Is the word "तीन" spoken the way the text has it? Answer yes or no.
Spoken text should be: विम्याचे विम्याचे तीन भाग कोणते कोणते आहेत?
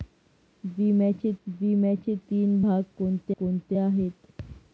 yes